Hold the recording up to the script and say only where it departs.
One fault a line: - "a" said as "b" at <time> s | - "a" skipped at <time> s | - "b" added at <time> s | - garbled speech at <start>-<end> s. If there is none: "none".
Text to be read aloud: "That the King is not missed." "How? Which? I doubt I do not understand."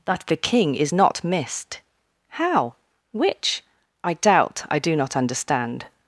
none